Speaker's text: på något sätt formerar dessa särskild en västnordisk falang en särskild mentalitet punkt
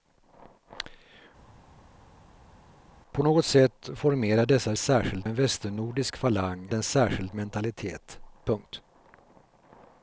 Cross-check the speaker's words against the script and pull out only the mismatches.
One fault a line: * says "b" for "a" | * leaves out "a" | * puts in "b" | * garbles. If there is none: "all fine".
all fine